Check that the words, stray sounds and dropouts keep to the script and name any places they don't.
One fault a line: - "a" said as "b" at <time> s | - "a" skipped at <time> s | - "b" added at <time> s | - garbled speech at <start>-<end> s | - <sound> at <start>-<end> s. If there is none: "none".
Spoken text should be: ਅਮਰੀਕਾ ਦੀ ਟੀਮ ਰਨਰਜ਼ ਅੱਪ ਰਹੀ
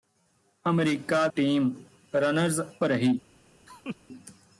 - "ਦੀ" skipped at 1.3 s
- "ਅੱਪ" skipped at 2.6 s
- laugh at 3.7-4.0 s